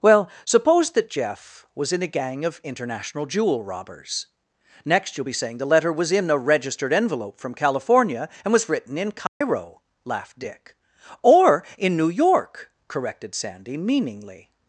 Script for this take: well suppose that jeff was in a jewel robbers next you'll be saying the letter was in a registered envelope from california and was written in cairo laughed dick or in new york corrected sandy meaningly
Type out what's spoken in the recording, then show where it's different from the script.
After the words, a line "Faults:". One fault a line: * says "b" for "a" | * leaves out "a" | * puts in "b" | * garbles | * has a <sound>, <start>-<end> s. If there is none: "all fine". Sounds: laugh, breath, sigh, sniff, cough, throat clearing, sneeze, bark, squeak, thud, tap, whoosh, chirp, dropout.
well suppose that jeff was in a gang of international jewel robbers next you'll be saying the letter was in a registered envelope from california and was written in cairo laughed dick or in new york corrected sandy meaningly
Faults:
* puts in "gang of international"
* has a dropout, 9.3-9.4 s